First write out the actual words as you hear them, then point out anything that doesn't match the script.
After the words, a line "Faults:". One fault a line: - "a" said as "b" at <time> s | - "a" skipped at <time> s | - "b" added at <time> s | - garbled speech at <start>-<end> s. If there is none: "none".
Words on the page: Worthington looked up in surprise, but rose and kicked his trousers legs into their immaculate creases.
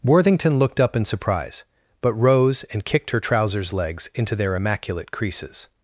Worthington looked up in surprise, but rose and kicked her trousers legs into their immaculate creases.
Faults:
- "his" said as "her" at 3.1 s